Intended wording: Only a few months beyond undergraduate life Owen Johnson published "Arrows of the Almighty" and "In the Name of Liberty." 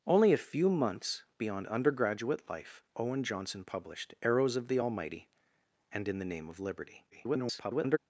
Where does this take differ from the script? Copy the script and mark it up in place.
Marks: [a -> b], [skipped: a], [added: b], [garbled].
Only a few months beyond undergraduate life Owen Johnson published "Arrows of the Almighty" and "In the Name of Liberty." [garbled]